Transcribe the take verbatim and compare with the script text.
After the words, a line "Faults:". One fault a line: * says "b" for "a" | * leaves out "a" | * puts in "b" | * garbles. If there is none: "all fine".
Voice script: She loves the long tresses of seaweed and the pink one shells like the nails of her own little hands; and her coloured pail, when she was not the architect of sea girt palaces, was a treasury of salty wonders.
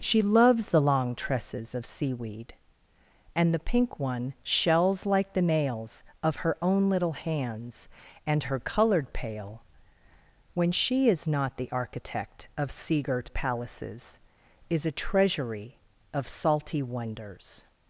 She loves the long tresses of seaweed and the pink one shells like the nails of her own little hands; and her coloured pail, when she is not the architect of sea girt palaces, is a treasury of salty wonders.
Faults:
* says "is" for "was"
* says "is" for "was"